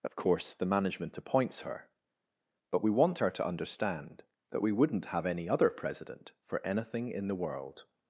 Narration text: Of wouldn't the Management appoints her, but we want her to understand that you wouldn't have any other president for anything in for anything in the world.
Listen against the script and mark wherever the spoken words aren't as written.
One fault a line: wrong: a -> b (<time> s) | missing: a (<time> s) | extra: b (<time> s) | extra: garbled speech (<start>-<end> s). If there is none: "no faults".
wrong: wouldn't -> course (0.1 s)
wrong: you -> we (4.6 s)
missing: for anything in (7.3 s)